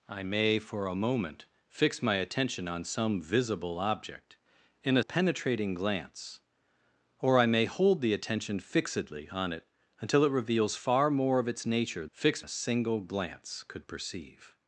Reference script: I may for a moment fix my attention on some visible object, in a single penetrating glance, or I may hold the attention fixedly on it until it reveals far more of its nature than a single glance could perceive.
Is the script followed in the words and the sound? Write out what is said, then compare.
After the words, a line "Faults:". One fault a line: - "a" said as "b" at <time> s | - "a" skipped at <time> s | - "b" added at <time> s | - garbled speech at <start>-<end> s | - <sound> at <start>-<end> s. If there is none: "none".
I may for a moment fix my attention on some visible object, in a penetrating glance, or I may hold the attention fixedly on it until it reveals far more of its nature fix a single glance could perceive.
Faults:
- "single" skipped at 5.0 s
- "than" said as "fix" at 12.1 s